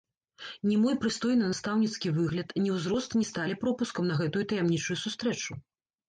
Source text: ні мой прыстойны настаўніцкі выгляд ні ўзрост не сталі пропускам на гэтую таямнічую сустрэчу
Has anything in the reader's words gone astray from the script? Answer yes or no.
no